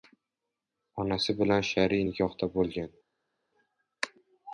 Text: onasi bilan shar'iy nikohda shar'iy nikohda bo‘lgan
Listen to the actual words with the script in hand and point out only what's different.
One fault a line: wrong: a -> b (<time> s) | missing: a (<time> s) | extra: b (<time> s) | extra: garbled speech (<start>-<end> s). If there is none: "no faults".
missing: shar'iy nikohda (2.5 s)